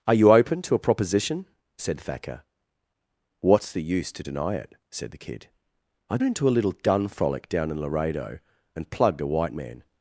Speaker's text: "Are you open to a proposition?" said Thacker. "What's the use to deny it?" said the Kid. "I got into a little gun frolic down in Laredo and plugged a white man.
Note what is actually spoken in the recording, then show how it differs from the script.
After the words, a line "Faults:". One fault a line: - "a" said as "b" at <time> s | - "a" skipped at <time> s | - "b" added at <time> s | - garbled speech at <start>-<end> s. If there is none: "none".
"Are you open to a proposition?" said Thacker. "What's the use to deny it?" said the Kid. "I into a little gun frolic down in Laredo and plugged a white man.
Faults:
- "got" skipped at 6.2 s